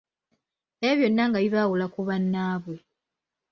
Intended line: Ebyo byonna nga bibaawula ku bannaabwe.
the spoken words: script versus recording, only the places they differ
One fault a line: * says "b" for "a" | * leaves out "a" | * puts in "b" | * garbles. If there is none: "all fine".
all fine